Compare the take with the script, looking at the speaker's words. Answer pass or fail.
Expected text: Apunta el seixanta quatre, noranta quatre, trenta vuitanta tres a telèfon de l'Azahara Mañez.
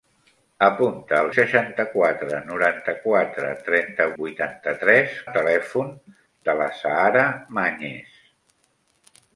pass